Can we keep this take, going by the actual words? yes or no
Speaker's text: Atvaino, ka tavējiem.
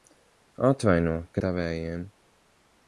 yes